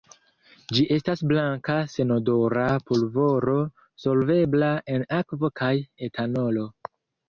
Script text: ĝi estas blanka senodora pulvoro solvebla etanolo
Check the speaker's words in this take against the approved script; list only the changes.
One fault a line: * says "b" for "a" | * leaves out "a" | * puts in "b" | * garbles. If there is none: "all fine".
* puts in "en akvo kaj"